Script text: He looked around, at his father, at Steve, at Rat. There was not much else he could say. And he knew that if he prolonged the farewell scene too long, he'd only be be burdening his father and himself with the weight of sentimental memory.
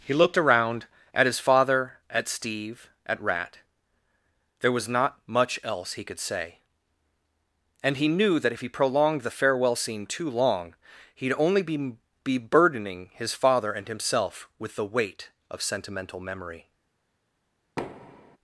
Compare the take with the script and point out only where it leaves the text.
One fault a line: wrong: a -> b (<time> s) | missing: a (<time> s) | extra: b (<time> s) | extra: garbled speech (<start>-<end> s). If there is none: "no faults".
no faults